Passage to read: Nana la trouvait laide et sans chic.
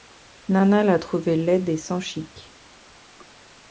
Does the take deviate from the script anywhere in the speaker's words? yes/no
no